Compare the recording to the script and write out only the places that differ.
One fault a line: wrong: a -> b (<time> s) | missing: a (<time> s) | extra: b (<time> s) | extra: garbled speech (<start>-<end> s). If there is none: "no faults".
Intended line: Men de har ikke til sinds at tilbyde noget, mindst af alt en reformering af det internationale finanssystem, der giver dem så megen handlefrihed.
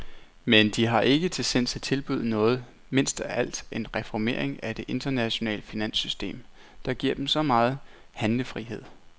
no faults